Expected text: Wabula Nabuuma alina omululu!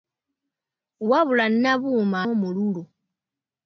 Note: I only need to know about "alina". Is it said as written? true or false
false